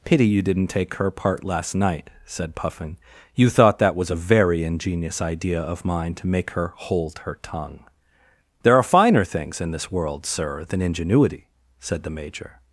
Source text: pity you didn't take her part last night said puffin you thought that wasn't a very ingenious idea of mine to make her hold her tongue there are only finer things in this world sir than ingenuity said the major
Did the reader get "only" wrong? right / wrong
wrong